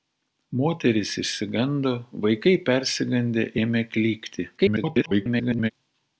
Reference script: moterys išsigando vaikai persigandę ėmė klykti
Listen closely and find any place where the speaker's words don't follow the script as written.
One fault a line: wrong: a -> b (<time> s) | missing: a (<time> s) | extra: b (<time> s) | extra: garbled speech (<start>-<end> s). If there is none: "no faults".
extra: garbled speech (4.6-5.7 s)